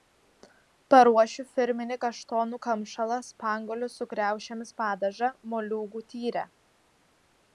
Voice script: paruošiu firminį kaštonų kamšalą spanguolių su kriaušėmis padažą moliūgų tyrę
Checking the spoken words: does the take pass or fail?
pass